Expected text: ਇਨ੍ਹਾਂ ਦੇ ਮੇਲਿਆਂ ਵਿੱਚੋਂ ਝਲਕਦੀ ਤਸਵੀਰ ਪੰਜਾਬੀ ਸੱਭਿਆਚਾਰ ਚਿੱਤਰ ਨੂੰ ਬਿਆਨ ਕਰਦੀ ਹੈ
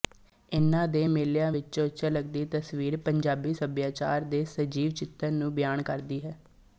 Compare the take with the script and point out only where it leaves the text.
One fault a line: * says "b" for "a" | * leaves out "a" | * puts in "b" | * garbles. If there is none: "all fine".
* puts in "ਦੇ ਸਜੀਵ"